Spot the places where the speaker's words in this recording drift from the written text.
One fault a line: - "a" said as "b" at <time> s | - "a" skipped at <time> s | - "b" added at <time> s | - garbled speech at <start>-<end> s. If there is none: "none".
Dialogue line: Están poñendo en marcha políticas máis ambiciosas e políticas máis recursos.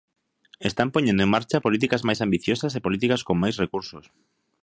- "con" added at 3.3 s